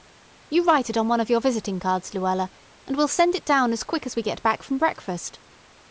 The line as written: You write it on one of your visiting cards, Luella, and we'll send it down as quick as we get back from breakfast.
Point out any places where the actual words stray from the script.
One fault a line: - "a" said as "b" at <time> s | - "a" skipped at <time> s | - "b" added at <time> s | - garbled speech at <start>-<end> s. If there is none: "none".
none